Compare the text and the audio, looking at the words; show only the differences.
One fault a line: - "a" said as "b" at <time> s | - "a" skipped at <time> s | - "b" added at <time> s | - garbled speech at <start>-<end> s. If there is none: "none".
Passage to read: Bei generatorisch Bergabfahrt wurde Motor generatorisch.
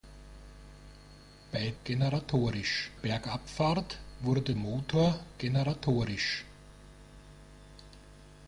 none